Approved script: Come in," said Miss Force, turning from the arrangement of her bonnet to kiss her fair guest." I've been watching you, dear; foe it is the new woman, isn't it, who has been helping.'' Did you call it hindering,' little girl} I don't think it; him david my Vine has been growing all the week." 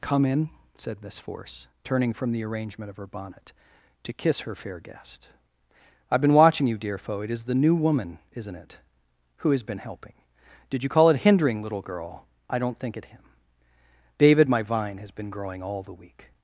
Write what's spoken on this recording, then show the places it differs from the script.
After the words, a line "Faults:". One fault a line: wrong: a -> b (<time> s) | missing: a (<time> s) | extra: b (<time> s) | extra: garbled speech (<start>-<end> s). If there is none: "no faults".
Come in," said Miss Force, turning from the arrangement of her bonnet to kiss her fair guest." I've been watching you, dear; foe it is the new woman, isn't it, who has been helping.'' Did you call it hindering,' little girl} I don't think it; him david my Vine has been growing all the week."
Faults:
no faults